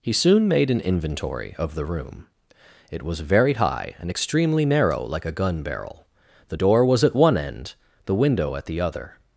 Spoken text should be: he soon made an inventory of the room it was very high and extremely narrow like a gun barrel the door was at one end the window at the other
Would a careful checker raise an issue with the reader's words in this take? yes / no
no